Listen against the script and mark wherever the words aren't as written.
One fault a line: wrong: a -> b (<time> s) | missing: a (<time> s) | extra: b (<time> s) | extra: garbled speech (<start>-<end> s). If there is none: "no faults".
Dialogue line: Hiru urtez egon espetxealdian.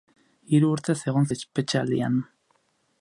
no faults